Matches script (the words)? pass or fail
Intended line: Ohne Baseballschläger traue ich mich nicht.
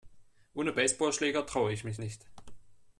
pass